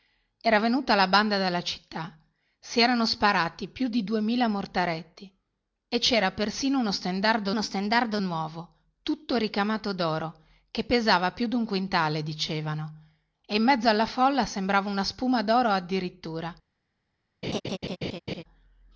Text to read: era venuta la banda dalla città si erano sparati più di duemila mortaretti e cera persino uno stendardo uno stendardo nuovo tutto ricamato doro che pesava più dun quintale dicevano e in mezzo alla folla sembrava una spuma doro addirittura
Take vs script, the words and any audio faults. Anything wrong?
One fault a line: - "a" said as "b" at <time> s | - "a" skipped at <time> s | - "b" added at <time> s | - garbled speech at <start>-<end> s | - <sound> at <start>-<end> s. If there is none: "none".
- laugh at 17.4-18.4 s